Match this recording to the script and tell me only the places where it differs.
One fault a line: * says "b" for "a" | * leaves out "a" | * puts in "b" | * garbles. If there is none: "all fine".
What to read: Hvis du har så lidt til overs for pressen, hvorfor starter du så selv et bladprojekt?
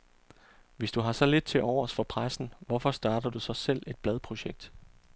all fine